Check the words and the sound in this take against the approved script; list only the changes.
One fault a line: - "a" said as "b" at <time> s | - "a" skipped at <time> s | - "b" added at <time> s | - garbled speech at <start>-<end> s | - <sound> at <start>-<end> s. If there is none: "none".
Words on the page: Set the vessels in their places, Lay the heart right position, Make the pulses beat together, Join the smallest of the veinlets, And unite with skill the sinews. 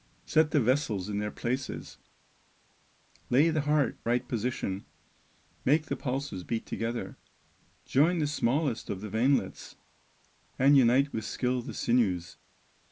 none